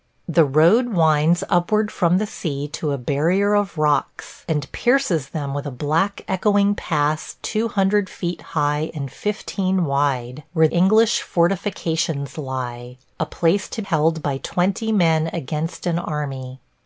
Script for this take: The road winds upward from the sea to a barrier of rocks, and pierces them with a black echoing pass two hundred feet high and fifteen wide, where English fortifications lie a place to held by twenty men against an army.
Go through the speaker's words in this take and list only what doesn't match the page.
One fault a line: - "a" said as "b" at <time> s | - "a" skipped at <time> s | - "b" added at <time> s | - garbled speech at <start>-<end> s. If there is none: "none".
none